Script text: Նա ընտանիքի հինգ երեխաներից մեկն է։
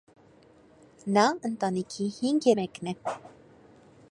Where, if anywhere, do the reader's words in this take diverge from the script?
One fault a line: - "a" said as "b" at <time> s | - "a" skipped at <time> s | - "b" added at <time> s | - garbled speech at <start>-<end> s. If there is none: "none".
- "երեխաներից" skipped at 2.5 s